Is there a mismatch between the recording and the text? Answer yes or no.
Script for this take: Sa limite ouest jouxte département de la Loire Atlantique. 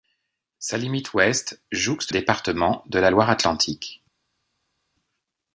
no